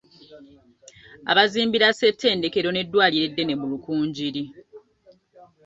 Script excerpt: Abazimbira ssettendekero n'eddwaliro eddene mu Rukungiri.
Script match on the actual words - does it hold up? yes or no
yes